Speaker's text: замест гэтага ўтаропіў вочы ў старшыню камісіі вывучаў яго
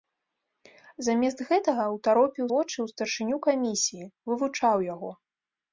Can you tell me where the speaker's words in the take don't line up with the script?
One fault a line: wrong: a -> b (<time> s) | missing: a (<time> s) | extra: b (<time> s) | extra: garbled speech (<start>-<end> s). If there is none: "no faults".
no faults